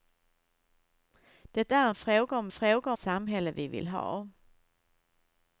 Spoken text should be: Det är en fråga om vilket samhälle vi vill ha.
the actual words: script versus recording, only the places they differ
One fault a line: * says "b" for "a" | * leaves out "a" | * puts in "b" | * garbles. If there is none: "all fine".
* says "fråga" for "vilket"